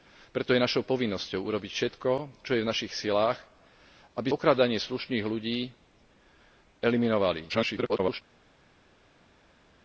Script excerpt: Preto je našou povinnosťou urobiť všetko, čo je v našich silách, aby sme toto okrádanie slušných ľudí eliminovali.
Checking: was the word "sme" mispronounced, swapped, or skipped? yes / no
yes